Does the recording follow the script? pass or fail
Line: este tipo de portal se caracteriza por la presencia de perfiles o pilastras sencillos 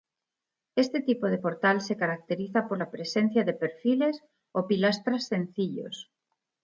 pass